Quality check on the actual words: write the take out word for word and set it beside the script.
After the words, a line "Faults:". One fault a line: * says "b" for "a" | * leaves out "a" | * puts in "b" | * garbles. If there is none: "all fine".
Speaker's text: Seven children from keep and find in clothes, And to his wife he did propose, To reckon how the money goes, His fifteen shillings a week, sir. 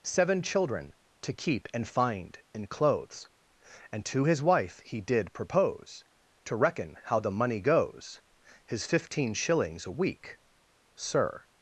Seven children to keep and find in clothes, And to his wife he did propose, To reckon how the money goes, His fifteen shillings a week, sir.
Faults:
* says "to" for "from"